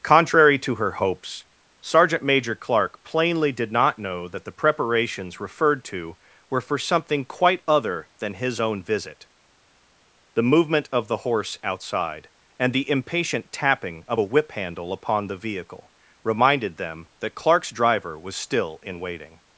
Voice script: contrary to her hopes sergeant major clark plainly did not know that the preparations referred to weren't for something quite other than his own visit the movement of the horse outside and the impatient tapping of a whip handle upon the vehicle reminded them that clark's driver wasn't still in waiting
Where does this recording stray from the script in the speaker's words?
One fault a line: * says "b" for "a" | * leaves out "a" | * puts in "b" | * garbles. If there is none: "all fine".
* says "were" for "weren't"
* says "was" for "wasn't"